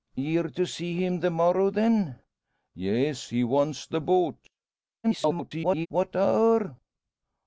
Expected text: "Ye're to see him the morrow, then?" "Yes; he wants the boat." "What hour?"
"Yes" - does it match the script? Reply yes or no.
yes